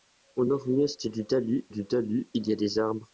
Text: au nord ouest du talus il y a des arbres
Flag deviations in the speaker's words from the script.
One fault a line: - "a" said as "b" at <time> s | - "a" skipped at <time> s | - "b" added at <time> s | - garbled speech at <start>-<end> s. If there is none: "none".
- "du talus" added at 1.7 s